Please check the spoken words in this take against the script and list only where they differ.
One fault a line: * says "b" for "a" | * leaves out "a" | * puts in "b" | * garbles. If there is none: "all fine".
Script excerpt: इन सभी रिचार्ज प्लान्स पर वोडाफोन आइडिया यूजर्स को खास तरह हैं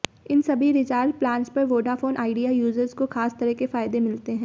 * puts in "के फायदे मिलते"